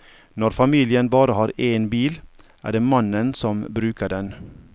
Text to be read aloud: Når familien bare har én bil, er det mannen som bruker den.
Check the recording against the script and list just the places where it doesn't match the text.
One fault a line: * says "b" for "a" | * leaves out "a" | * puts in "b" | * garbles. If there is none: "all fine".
all fine